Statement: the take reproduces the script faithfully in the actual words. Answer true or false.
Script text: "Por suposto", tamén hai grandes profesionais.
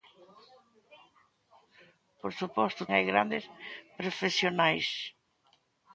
false